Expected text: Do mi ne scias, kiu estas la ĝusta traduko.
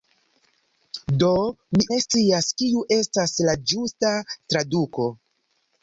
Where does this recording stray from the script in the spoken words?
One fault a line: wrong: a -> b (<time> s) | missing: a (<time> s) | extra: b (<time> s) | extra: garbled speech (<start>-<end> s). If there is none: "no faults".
no faults